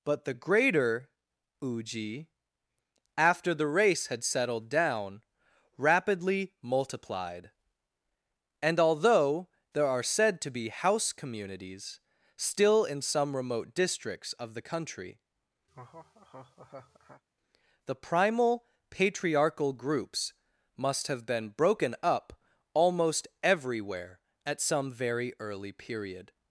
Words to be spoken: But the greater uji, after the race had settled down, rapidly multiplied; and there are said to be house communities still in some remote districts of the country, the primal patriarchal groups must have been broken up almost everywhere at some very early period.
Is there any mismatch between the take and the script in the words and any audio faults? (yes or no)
yes